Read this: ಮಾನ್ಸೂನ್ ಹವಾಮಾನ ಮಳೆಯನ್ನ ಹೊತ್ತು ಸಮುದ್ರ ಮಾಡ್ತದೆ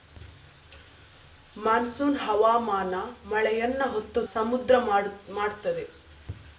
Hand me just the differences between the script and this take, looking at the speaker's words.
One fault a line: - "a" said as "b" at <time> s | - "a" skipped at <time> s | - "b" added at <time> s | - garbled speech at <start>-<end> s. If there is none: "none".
none